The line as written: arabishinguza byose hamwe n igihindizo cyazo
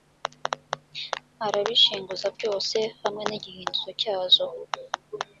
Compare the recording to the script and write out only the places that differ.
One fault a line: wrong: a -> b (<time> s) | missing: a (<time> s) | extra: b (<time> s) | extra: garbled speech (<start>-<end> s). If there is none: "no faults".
no faults